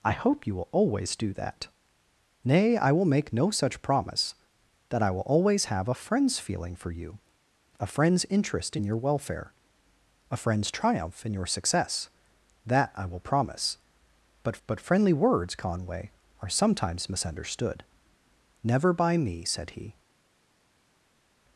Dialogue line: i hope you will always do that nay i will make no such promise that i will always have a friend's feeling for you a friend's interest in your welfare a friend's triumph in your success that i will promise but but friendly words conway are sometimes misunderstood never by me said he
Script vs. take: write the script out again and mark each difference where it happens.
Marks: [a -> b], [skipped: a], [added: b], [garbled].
i hope you will always do that nay i will make no such promise that i will always have a friend's feeling for you a friend's interest in your welfare a friend's triumph in your success that i will promise but but friendly words conway are sometimes misunderstood never by me said he